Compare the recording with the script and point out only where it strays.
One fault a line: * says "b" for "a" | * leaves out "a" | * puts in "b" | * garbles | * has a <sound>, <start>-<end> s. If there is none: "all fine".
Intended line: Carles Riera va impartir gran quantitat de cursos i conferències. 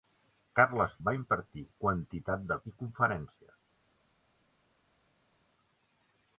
* leaves out "Riera"
* leaves out "gran"
* leaves out "cursos"